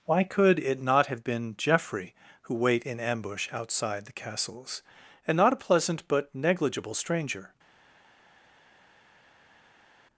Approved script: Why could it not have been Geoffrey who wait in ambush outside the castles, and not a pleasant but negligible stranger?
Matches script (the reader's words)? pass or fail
pass